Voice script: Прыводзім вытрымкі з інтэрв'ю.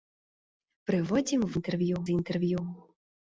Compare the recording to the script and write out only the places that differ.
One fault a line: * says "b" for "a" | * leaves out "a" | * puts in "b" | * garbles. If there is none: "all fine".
* says "інтэрв'ю" for "вытрымкі"